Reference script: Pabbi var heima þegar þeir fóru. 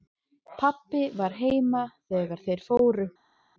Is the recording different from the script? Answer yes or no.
no